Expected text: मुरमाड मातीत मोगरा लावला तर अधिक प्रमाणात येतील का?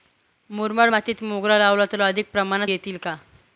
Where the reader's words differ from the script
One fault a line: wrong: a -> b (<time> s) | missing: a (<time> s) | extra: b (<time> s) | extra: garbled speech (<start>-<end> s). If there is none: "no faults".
no faults